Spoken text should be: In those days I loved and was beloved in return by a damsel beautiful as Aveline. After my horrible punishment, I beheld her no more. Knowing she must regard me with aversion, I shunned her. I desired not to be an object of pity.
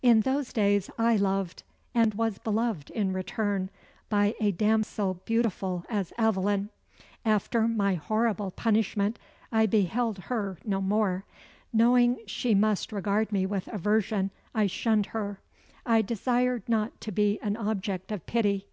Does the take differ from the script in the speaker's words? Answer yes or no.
no